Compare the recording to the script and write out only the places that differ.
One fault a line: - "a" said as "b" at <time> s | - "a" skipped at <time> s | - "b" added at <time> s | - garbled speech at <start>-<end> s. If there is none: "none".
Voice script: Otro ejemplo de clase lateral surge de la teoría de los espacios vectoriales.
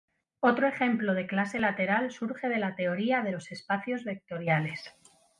none